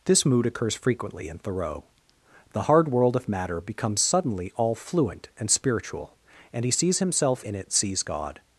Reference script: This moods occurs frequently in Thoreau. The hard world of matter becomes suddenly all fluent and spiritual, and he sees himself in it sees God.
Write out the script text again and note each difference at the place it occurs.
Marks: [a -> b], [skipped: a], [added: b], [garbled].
This [moods -> mood] occurs frequently in Thoreau. The hard world of matter becomes suddenly all fluent and spiritual, and he sees himself in it sees God.